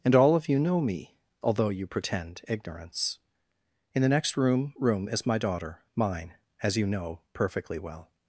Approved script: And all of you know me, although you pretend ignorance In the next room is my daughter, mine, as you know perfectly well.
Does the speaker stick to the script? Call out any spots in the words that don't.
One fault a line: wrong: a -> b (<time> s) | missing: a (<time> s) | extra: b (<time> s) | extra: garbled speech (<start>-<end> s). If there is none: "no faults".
extra: room (4.8 s)